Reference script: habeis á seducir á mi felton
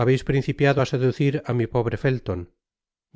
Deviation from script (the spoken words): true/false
true